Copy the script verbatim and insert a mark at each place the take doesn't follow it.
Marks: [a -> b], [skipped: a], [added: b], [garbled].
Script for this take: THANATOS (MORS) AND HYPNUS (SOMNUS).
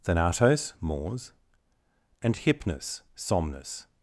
THANATOS (MORS) AND HYPNUS (SOMNUS).